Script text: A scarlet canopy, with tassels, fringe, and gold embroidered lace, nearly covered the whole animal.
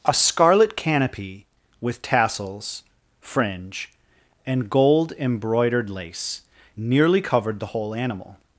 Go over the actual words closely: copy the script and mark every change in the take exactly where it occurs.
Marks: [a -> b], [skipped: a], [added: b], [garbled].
A scarlet canopy, with tassels, fringe, and gold embroidered lace, nearly covered the whole animal.